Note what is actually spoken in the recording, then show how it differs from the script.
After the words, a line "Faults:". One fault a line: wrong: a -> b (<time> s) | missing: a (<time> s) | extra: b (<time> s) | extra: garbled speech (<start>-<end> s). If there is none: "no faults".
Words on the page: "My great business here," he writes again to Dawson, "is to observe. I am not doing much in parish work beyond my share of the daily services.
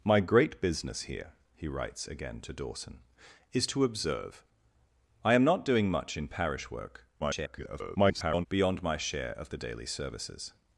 "My great business here," he writes again to Dawson, "is to observe. I am not doing much in parish work [garbled] beyond my share of the daily services.
Faults:
extra: garbled speech (7.2-8.5 s)